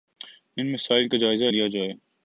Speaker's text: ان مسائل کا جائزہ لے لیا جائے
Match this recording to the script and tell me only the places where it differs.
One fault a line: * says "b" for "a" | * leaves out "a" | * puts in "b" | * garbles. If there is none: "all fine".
* leaves out "لے"